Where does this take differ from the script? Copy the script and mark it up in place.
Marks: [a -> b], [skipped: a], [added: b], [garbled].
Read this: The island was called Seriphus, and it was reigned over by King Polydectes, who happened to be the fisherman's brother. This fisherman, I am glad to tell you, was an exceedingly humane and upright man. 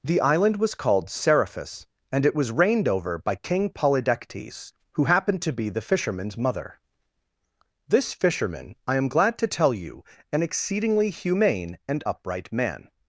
The island was called Seriphus, and it was reigned over by King Polydectes, who happened to be the fisherman's [brother. -> mother] This fisherman, I am glad to tell you, [skipped: was] an exceedingly humane and upright man.